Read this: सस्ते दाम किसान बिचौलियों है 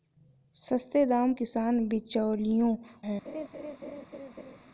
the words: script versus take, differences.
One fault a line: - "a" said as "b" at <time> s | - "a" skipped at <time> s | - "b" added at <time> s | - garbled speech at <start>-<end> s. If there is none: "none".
none